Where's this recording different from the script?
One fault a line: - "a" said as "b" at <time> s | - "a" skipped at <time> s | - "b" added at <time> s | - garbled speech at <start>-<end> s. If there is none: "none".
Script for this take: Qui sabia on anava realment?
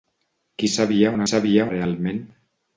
- "anava" said as "sabia" at 1.3 s